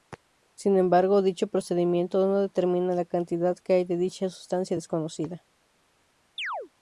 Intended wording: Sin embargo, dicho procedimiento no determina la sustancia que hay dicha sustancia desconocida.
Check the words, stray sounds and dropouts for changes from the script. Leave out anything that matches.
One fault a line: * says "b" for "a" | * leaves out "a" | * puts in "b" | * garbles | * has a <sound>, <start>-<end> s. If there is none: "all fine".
* says "cantidad" for "sustancia"
* puts in "de"
* has a chirp, 6.4-6.7 s